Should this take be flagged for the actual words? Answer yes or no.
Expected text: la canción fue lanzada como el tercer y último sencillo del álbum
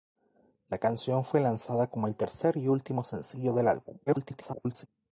yes